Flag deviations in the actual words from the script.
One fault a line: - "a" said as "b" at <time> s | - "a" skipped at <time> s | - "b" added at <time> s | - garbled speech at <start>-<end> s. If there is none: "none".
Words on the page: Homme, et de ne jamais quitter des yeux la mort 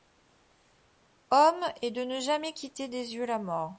none